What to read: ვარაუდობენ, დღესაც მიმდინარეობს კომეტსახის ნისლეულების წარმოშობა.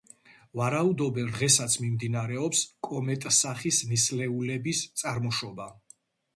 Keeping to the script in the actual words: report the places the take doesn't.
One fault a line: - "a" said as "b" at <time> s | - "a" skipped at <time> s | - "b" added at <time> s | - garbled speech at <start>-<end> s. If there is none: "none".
none